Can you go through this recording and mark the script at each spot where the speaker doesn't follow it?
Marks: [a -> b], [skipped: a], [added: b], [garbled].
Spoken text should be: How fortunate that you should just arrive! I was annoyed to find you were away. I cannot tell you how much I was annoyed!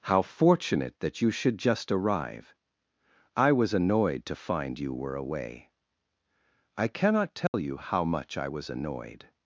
How fortunate that you should just arrive! I was annoyed to find you were away. I cannot tell you how much I was annoyed!